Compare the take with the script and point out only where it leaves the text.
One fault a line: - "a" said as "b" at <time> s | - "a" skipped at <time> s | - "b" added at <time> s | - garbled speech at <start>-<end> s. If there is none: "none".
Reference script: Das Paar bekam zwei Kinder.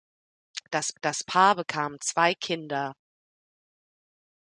- "das" added at 1.0 s